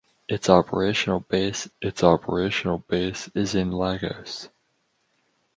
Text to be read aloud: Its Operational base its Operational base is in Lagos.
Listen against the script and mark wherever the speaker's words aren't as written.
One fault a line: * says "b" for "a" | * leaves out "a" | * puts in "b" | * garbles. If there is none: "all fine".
all fine